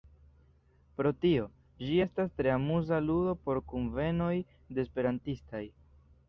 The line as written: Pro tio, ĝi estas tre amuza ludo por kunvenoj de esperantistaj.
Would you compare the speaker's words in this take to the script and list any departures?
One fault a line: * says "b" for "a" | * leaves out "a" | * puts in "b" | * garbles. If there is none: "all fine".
all fine